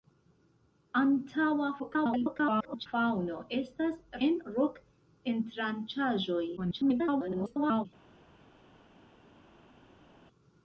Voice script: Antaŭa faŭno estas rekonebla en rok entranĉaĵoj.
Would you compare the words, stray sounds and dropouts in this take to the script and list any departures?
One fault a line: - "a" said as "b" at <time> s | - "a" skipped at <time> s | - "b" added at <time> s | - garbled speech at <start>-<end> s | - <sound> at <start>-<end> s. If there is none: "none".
- garbled speech at 1.8-2.9 s
- "rekonebla" skipped at 4.0 s
- garbled speech at 6.6-7.9 s